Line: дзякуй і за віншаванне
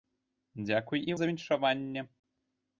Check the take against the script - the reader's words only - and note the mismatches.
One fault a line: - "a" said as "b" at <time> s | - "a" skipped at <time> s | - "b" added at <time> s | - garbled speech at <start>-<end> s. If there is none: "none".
none